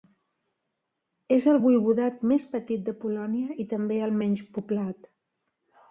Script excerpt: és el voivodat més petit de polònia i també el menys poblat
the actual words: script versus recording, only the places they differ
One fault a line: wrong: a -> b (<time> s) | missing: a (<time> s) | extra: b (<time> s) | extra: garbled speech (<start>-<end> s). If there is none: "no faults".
no faults